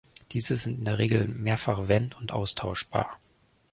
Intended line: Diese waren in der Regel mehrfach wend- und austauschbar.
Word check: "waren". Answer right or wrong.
wrong